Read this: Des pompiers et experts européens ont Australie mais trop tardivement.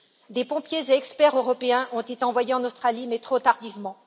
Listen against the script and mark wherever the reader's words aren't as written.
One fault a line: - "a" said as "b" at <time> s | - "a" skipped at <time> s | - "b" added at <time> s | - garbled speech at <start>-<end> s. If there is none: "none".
- "été envoyés en" added at 2.0 s